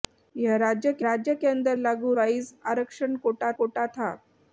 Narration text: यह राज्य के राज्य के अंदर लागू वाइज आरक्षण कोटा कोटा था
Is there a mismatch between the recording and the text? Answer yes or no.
no